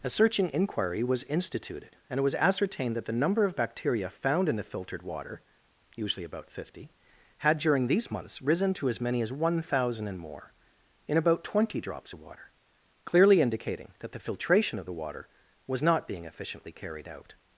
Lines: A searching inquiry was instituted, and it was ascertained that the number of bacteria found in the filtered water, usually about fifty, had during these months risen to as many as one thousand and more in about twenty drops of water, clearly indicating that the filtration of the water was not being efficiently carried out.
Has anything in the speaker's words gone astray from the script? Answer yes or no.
no